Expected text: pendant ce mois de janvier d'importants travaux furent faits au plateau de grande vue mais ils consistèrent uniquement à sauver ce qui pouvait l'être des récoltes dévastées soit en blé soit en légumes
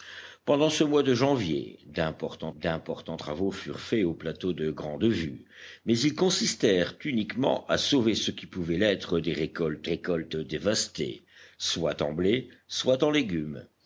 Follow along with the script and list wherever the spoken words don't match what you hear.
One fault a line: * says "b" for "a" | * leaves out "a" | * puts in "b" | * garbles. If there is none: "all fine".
* puts in "d'importants"
* puts in "récoltes"